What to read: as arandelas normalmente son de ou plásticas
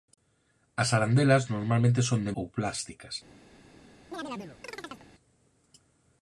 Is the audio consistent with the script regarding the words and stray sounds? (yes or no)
no